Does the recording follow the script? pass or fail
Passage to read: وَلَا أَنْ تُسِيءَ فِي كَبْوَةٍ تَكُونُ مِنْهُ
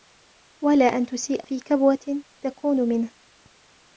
pass